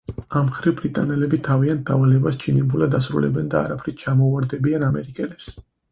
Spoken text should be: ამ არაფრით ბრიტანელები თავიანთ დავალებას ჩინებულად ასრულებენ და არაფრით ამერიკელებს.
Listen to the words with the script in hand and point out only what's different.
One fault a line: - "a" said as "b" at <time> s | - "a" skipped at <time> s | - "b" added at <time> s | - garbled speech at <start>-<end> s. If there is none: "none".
- "არაფრით" said as "მხრივ" at 0.5 s
- "ჩამოუვარდებიან" added at 4.0 s